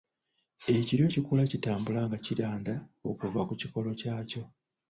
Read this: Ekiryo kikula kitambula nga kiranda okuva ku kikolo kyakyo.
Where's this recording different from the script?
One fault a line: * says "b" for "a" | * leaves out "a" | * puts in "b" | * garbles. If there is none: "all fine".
all fine